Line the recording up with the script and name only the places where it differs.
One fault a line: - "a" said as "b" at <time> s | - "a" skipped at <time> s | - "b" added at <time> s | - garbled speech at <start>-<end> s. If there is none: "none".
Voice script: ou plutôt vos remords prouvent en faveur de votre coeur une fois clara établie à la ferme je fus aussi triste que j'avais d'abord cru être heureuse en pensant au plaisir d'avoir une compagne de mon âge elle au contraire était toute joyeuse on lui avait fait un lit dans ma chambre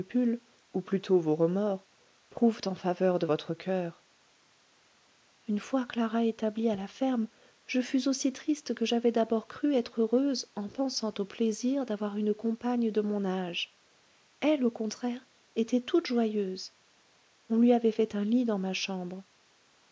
none